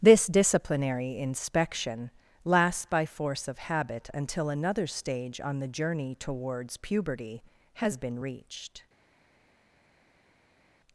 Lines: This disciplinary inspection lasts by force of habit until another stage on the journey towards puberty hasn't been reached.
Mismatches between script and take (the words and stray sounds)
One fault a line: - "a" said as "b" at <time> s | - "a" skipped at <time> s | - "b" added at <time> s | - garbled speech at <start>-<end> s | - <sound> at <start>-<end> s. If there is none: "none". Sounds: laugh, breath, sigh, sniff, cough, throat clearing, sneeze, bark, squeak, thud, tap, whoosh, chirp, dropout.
- "hasn't" said as "has" at 7.7 s